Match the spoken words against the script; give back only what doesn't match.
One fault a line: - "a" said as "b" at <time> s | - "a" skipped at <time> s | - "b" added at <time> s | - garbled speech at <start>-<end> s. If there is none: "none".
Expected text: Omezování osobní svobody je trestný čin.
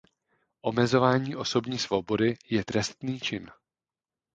none